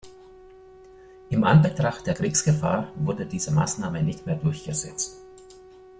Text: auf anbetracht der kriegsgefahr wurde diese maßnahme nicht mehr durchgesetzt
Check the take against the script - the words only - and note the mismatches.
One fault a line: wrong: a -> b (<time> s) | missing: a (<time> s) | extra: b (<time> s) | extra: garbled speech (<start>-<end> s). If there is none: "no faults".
wrong: auf -> in (1.3 s)